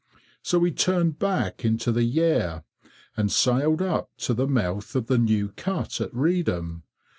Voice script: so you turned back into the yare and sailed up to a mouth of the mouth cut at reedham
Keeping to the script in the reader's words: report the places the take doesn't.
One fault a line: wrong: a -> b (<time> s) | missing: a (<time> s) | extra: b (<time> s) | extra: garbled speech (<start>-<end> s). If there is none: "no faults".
wrong: you -> we (0.6 s)
wrong: a -> the (4.3 s)
wrong: mouth -> new (5.2 s)